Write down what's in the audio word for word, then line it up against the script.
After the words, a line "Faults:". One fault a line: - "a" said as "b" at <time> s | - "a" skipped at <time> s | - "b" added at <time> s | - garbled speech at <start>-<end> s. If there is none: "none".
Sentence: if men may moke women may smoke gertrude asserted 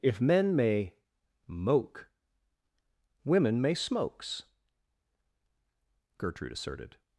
if men may moke women may smokes gertrude asserted
Faults:
- "smoke" said as "smokes" at 3.7 s